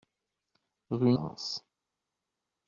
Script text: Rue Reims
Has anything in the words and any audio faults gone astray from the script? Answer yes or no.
no